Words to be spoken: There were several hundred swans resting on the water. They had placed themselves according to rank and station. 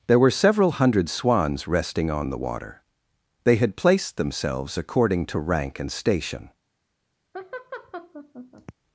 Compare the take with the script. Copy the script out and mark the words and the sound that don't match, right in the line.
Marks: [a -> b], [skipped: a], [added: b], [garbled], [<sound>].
There were several hundred swans resting on the water. They had placed themselves according to rank and station. [laugh]